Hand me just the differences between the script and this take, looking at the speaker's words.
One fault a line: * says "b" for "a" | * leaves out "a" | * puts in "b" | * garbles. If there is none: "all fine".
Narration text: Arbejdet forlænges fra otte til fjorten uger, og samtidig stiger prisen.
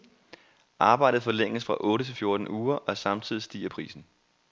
all fine